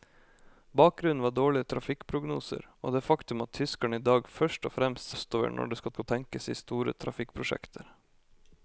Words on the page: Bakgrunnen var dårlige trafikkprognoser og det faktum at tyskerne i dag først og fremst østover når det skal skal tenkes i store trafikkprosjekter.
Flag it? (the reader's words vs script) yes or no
no